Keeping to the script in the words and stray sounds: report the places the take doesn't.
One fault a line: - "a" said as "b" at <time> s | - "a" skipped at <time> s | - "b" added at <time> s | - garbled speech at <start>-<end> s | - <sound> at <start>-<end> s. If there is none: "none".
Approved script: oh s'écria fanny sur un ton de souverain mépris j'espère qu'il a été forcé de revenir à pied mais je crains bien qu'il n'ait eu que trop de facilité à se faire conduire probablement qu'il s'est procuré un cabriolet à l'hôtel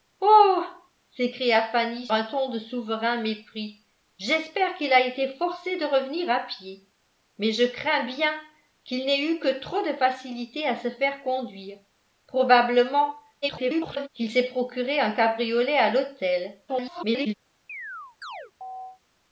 - "sur" skipped at 2.1 s
- garbled speech at 13.4-14.1 s
- garbled speech at 16.7-17.3 s
- chirp at 17.7-19.0 s